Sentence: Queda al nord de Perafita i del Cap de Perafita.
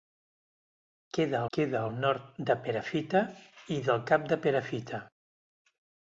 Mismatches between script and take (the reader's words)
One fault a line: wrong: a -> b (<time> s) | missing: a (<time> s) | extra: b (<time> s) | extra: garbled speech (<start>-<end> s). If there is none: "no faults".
extra: queda (1.6 s)